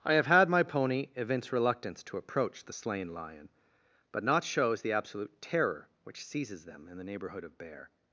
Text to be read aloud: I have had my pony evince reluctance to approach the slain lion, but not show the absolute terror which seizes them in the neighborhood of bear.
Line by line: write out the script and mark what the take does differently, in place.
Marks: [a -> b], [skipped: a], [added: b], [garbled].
I have had my pony evince reluctance to approach the slain lion, but not [show -> shows] the absolute terror which seizes them in the neighborhood of bear.